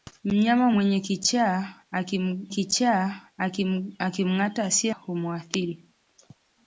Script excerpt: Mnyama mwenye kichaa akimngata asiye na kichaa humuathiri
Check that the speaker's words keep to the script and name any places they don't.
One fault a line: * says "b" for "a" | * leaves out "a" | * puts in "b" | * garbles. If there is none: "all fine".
* puts in "kichaa"
* leaves out "na kichaa"